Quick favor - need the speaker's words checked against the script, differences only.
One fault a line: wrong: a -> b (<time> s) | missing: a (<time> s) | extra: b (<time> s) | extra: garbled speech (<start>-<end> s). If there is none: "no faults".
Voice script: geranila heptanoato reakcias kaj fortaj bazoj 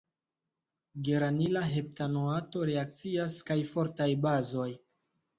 no faults